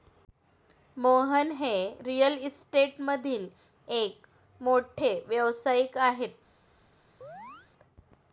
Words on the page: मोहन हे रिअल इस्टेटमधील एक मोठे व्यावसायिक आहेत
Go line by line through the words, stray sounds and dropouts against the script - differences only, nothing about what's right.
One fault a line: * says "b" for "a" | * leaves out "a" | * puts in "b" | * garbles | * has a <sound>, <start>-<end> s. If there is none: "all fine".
* has a chirp, 7.2-7.7 s